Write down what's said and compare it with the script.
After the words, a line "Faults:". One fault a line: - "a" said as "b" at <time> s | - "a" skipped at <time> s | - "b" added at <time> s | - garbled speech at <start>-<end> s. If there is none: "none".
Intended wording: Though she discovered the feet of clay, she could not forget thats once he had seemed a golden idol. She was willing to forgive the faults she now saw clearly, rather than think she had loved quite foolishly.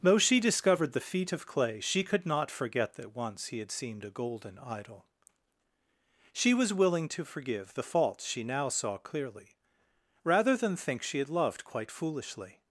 Though she discovered the feet of clay, she could not forget that once he had seemed a golden idol. She was willing to forgive the faults she now saw clearly, rather than think she had loved quite foolishly.
Faults:
- "thats" said as "that" at 3.0 s